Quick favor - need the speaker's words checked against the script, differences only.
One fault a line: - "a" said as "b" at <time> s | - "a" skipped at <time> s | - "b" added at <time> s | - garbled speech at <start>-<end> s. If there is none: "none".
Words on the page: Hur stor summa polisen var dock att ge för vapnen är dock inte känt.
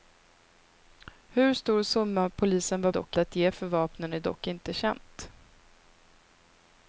none